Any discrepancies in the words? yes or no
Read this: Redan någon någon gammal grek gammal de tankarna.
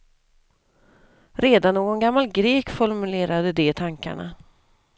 yes